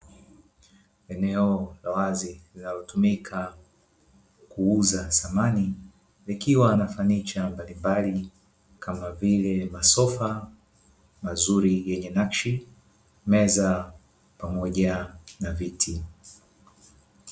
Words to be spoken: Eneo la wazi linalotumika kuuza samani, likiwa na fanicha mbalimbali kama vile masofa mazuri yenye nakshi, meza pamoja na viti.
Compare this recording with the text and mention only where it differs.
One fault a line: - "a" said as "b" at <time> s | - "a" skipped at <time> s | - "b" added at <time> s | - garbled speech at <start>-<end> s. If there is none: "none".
none